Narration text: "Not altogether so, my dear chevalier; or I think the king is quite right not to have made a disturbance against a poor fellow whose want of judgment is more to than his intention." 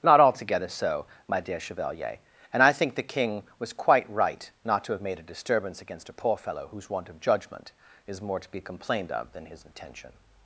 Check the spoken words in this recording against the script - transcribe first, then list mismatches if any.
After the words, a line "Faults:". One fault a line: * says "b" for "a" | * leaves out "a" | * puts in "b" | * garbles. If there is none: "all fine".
"Not altogether so, my dear chevalier; and I think the king was quite right not to have made a disturbance against a poor fellow whose want of judgment is more to be complained of than his intention."
Faults:
* says "and" for "or"
* says "was" for "is"
* puts in "be complained of"